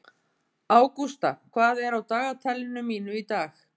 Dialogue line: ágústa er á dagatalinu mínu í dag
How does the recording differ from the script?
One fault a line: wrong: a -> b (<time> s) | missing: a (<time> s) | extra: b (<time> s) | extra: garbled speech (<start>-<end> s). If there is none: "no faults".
extra: hvað (1.5 s)